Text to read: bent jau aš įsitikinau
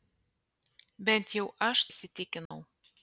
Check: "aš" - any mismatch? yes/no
no